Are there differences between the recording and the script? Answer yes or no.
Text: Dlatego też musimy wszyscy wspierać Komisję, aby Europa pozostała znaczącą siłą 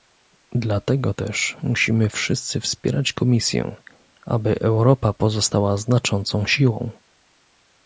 no